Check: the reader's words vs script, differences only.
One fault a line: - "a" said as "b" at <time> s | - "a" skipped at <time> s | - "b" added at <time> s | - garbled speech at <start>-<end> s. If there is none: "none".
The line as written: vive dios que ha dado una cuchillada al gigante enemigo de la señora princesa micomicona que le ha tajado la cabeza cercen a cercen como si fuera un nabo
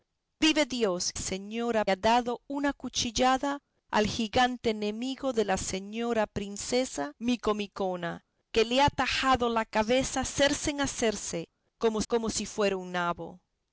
- "que" said as "señora" at 1.1 s
- "como" added at 12.1 s